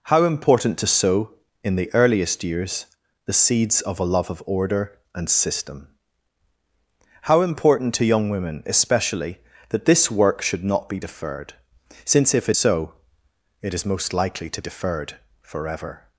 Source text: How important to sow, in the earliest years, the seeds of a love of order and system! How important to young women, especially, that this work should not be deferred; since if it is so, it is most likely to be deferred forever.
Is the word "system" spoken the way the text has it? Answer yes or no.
yes